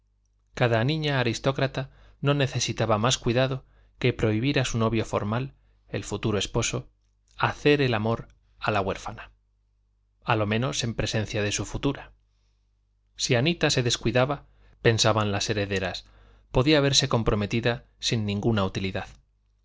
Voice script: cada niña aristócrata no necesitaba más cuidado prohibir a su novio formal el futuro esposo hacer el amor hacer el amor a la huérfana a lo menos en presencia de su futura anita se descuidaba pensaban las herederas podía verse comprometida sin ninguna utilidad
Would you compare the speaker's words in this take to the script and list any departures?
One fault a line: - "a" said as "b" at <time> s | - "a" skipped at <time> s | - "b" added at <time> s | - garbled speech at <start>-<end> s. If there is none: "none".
- "que" added at 4.0 s
- "hacer el amor" skipped at 8.3 s
- "si" added at 13.2 s